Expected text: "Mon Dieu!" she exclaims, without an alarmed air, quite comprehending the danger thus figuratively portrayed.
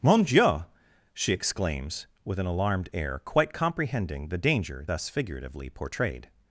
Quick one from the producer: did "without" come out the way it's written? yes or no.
no